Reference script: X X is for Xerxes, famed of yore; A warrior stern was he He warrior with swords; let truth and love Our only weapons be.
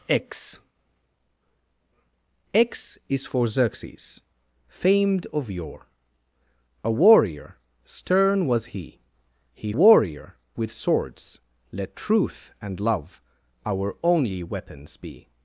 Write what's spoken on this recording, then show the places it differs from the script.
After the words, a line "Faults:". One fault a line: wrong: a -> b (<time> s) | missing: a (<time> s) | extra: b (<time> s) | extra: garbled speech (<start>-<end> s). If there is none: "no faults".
X X is for Xerxes, famed of yore; A warrior stern was he He warrior with swords; let truth and love Our only weapons be.
Faults:
no faults